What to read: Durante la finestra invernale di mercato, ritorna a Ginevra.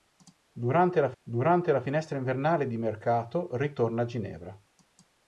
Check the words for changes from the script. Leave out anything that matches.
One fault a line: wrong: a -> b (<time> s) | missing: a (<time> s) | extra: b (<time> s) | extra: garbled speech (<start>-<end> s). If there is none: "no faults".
extra: durante la (1.2 s)